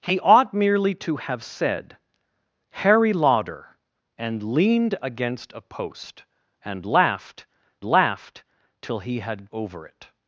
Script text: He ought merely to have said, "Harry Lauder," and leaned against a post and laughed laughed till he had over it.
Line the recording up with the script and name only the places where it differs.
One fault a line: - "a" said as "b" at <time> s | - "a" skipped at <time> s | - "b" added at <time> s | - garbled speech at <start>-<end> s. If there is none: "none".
none